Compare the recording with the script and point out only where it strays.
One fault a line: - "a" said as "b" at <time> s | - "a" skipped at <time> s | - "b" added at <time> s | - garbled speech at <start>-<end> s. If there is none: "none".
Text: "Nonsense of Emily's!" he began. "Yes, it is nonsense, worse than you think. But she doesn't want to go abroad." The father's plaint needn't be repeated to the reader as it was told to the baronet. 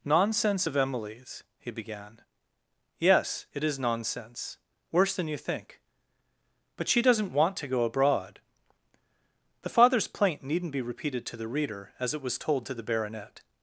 none